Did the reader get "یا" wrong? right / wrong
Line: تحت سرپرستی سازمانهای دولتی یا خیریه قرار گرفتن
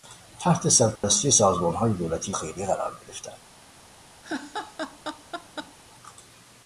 wrong